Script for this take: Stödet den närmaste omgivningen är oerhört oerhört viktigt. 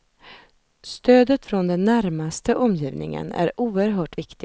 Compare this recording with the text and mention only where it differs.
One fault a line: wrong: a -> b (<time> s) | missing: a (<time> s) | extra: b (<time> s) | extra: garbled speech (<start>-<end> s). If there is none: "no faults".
extra: från (1.4 s)
missing: oerhört (4.2 s)